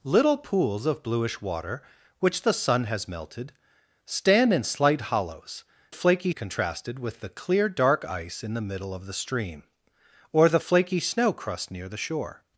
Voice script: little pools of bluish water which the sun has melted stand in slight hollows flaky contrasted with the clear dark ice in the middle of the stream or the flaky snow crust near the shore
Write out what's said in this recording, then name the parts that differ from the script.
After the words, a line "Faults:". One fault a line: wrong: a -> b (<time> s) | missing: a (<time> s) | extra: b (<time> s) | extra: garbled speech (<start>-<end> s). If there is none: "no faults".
little pools of bluish water which the sun has melted stand in slight hollows flaky contrasted with the clear dark ice in the middle of the stream or the flaky snow crust near the shore
Faults:
no faults